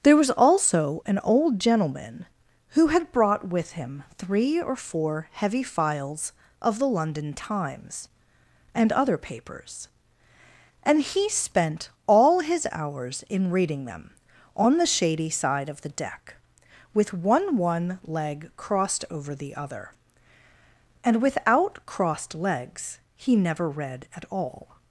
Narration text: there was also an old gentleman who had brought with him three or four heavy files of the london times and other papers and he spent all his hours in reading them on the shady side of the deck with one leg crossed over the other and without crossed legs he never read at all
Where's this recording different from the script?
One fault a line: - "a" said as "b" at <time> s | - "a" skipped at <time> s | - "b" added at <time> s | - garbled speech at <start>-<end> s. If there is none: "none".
- "one" added at 17.6 s